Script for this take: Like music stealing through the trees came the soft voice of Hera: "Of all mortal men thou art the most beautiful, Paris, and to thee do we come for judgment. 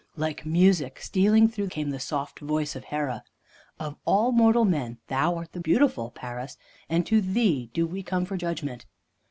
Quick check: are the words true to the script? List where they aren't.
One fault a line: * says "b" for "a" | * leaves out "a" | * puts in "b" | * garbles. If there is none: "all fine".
* leaves out "the trees"
* leaves out "most"